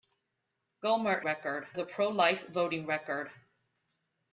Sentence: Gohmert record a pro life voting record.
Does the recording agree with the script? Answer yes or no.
yes